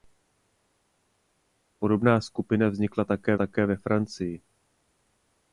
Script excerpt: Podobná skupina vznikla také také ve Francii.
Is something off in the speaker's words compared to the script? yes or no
no